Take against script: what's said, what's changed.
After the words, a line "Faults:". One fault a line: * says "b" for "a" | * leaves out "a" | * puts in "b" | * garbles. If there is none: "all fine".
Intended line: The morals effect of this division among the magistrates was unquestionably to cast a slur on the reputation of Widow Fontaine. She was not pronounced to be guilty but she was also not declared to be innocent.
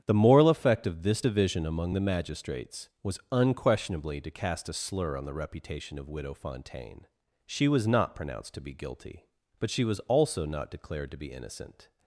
The moral effect of this division among the magistrates was unquestionably to cast a slur on the reputation of Widow Fontaine. She was not pronounced to be guilty but she was also not declared to be innocent.
Faults:
* says "moral" for "morals"